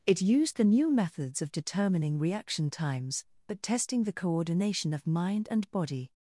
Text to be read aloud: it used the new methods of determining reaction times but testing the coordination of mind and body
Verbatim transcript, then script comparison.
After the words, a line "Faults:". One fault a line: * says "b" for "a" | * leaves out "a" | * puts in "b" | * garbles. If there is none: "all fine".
it used the new methods of determining reaction times but testing the coordination of mind and body
Faults:
all fine